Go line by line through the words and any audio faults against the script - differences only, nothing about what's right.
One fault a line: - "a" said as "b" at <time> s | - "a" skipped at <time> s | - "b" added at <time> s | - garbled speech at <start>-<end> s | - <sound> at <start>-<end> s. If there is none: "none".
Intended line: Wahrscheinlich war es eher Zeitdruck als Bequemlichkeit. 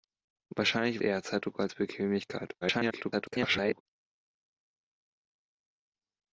- "war es" skipped at 1.0 s
- garbled speech at 2.6-3.8 s